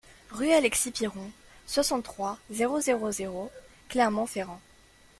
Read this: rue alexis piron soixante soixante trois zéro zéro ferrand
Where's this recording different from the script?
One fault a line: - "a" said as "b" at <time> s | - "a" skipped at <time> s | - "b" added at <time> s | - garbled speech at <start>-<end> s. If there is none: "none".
- "soixante" skipped at 2.0 s
- "zéro clermont" added at 3.1 s